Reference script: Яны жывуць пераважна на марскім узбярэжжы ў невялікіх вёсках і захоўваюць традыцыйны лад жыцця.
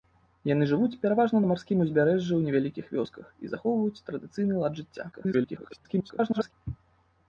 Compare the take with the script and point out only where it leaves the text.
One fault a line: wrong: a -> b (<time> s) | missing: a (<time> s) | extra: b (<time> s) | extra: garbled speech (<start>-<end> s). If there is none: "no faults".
extra: garbled speech (5.1-6.5 s)